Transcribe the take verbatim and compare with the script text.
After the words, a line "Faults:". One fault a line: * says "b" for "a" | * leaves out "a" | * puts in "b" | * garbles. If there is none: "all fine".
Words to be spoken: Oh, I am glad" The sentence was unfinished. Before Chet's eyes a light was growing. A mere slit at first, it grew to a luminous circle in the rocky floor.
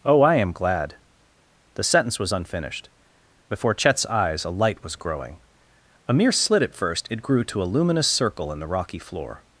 Oh, I am glad" The sentence was unfinished. Before Chet's eyes a light was growing. A mere slit at first, it grew to a luminous circle in the rocky floor.
Faults:
all fine